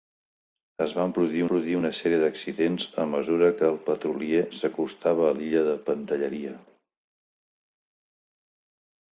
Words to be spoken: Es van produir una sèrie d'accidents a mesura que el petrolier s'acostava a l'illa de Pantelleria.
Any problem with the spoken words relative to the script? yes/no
yes